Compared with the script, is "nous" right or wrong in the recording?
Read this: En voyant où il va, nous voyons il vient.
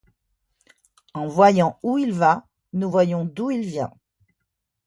right